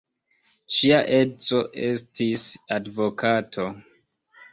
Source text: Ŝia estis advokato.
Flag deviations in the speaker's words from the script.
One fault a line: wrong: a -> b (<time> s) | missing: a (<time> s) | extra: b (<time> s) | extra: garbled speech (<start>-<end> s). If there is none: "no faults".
extra: edzo (1.2 s)